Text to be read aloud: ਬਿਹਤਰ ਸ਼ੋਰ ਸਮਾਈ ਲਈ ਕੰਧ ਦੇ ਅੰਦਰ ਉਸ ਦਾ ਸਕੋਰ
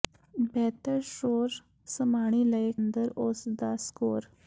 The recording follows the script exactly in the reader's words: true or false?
false